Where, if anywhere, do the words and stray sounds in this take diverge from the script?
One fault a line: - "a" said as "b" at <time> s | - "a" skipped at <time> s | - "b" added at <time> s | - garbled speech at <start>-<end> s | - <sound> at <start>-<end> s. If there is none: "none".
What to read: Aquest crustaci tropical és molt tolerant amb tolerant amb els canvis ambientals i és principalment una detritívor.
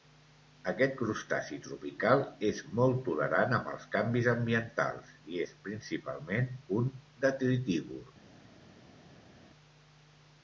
- "tolerant amb" skipped at 3.7 s
- "una" said as "un" at 6.8 s